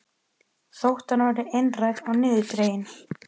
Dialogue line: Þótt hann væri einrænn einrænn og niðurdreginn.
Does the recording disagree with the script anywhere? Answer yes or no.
yes